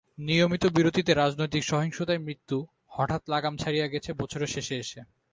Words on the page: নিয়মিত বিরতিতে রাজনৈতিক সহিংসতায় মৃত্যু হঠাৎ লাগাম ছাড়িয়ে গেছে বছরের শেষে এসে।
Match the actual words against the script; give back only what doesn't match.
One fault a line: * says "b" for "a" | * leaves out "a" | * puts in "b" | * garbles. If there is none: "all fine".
all fine